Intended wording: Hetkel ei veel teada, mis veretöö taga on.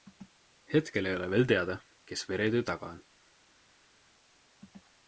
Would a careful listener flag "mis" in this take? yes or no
yes